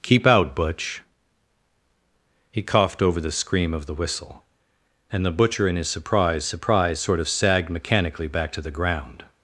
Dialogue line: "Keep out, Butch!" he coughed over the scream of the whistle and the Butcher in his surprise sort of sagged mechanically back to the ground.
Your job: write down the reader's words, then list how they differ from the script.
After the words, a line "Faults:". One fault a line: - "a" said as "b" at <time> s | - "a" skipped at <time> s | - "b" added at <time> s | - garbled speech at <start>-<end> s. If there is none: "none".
"Keep out, Butch!" he coughed over the scream of the whistle and the Butcher in his surprise surprise sort of sagged mechanically back to the ground.
Faults:
- "surprise" added at 6.5 s